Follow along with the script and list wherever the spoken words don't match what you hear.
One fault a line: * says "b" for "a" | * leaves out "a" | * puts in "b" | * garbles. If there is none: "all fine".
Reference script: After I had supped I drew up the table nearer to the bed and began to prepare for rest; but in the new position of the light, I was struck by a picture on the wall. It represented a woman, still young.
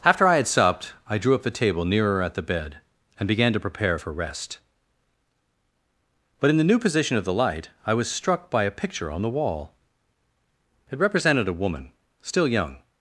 * says "at" for "to"